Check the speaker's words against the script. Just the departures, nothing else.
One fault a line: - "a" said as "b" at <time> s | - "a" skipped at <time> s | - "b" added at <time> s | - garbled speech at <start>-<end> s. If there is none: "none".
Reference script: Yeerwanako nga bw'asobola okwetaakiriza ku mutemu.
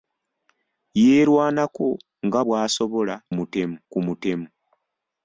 - "okwetaakiriza" said as "mutemu" at 3.4 s